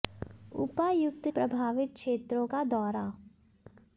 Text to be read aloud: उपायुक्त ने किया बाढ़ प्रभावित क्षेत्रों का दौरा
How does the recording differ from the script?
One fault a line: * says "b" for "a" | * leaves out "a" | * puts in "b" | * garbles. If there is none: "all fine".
* leaves out "ने किया बाढ़"